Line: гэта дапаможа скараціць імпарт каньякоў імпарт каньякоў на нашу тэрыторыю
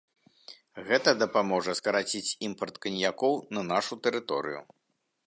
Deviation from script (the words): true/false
true